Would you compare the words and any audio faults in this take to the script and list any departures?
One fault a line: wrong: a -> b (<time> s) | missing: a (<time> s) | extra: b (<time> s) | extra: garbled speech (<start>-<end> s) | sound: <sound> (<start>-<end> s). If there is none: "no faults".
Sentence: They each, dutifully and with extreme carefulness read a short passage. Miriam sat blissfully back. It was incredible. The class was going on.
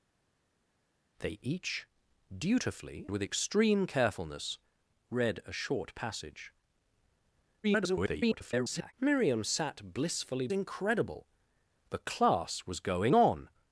missing: and (3.1 s)
extra: garbled speech (7.6-8.9 s)
missing: back It was (10.5 s)